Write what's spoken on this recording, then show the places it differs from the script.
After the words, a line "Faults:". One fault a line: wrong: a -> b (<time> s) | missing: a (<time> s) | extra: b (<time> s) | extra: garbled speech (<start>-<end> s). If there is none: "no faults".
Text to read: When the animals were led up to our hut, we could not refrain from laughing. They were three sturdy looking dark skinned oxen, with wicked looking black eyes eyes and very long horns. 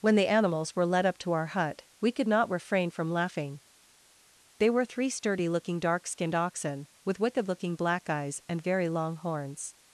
When the animals were led up to our hut, we could not refrain from laughing. They were three sturdy looking dark skinned oxen, with wicked looking black eyes and very long horns.
Faults:
missing: eyes (8.4 s)